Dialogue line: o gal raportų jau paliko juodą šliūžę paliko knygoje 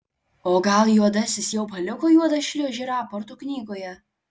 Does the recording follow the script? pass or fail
fail